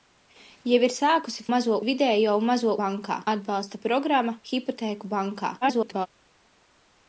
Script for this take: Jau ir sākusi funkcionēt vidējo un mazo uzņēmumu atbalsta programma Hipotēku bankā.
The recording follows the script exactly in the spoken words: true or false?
false